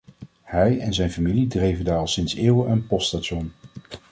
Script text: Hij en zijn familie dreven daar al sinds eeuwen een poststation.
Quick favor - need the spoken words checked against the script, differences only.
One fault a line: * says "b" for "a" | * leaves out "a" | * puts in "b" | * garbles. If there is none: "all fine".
all fine